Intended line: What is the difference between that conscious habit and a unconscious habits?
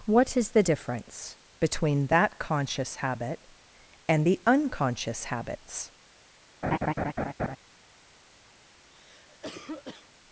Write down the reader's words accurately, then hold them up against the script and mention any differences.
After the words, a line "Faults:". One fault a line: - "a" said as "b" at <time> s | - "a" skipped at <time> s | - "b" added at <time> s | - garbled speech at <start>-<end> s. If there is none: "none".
What is the difference between that conscious habit and the unconscious habits?
Faults:
- "a" said as "the" at 4.2 s